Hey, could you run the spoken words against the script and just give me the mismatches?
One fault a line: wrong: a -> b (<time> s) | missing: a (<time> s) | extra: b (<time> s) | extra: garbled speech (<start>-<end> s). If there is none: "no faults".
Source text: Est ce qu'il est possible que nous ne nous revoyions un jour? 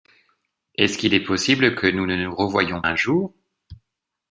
no faults